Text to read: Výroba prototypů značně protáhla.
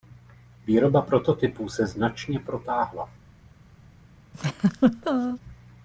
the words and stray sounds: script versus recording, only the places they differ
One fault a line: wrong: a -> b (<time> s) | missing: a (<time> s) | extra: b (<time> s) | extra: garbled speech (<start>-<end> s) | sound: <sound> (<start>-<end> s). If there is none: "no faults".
extra: se (1.7 s)
sound: laugh (4.3-5.4 s)